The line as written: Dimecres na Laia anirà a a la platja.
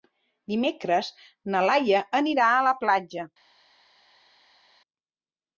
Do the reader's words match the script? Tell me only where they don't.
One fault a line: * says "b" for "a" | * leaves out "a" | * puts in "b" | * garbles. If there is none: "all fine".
* leaves out "a"